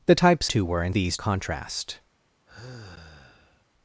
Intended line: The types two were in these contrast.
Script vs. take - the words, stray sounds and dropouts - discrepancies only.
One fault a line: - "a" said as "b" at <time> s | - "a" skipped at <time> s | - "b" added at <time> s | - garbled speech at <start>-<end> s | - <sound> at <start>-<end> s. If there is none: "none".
- sigh at 2.5-3.7 s